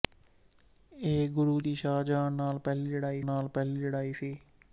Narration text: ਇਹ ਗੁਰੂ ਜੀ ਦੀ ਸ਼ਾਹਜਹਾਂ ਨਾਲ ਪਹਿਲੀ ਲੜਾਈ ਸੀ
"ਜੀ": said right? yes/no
no